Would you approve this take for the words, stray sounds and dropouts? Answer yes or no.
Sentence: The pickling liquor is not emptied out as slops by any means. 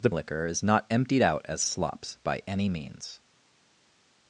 no